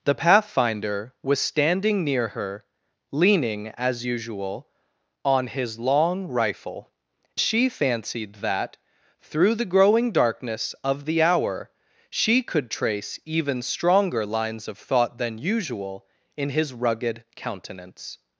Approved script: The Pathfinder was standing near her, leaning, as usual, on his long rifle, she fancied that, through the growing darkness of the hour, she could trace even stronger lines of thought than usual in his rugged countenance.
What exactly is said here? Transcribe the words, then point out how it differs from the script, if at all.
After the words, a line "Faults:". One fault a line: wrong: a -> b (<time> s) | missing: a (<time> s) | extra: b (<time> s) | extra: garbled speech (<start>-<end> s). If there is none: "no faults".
The Pathfinder was standing near her, leaning, as usual, on his long rifle, she fancied that, through the growing darkness of the hour, she could trace even stronger lines of thought than usual in his rugged countenance.
Faults:
no faults